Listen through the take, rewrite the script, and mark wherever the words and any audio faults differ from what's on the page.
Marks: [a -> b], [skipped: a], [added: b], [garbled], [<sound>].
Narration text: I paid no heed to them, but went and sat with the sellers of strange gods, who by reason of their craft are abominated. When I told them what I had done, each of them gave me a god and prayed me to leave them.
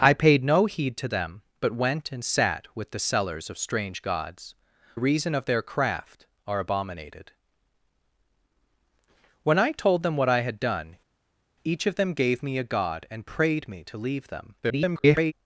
I paid no heed to them, but went and sat with the sellers of strange gods, [skipped: who by] reason of their craft are abominated. When I told them what I had done, each of them gave me a god and prayed me to leave them. [garbled]